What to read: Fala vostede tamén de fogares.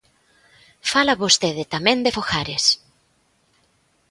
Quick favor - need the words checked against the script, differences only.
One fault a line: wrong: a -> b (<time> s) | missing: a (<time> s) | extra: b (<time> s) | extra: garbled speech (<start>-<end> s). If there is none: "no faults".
no faults